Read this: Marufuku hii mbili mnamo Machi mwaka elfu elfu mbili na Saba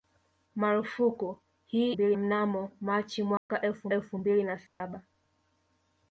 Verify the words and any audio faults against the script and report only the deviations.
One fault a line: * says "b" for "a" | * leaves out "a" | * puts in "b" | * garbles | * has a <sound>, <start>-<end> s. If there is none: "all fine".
* has a dropout, 3.4-3.5 s
* has a dropout, 4.7-4.8 s